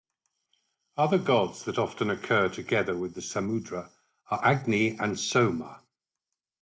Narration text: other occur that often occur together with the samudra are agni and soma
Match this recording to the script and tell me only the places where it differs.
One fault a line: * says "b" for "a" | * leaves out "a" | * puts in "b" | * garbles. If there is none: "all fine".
* says "gods" for "occur"